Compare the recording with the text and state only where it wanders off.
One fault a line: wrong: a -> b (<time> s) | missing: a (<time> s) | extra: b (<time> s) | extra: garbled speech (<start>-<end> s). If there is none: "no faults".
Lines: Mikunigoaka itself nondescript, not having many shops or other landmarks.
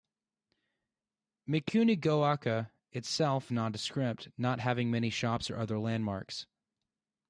no faults